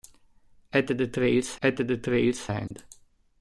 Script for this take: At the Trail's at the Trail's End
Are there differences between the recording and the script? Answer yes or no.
no